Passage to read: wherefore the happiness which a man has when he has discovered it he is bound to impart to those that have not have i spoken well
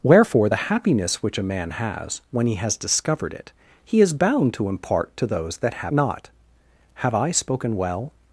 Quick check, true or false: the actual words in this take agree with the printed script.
true